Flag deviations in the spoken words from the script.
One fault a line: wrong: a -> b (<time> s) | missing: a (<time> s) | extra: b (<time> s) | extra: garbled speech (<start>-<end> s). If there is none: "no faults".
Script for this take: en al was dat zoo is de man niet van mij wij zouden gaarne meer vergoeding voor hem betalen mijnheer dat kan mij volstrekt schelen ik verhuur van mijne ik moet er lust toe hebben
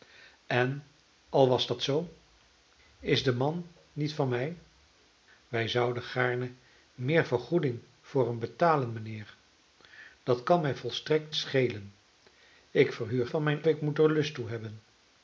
no faults